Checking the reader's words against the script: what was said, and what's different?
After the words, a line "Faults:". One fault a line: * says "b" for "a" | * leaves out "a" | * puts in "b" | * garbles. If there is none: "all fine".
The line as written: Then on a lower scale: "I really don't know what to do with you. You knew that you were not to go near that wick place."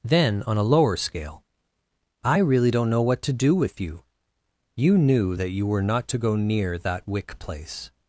Then on a lower scale: "I really don't know what to do with you. You knew that you were not to go near that wick place."
Faults:
all fine